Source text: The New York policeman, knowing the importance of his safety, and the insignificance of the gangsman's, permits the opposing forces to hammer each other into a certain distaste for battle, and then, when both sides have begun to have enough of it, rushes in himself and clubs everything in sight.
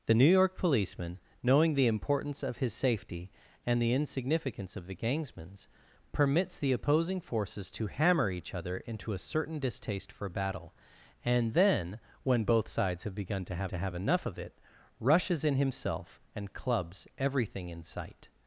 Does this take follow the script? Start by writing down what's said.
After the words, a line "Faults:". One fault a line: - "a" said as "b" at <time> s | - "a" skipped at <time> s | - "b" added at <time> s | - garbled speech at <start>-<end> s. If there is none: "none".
The New York policeman, knowing the importance of his safety, and the insignificance of the gangsman's, permits the opposing forces to hammer each other into a certain distaste for battle, and then, when both sides have begun to have to have enough of it, rushes in himself and clubs everything in sight.
Faults:
- "to have" added at 13.7 s